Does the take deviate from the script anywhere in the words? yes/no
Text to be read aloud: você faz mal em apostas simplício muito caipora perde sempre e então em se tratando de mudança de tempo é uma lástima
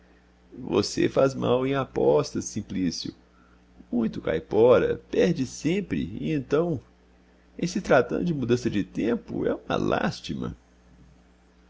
no